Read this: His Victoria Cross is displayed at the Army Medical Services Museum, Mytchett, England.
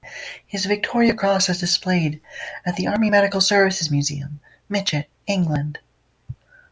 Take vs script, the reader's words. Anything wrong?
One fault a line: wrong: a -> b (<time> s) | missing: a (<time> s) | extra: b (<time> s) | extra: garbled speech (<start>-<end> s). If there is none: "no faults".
no faults